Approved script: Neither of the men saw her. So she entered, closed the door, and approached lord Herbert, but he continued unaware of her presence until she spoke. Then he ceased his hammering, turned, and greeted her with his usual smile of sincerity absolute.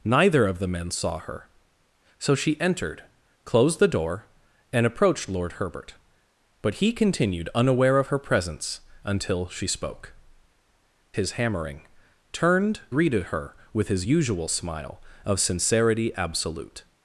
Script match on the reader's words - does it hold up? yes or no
no